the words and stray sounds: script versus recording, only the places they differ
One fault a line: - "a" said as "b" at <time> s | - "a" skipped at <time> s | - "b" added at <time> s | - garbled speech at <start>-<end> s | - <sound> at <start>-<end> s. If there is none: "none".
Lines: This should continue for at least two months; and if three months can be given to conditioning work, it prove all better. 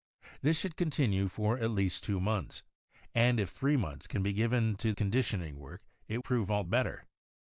none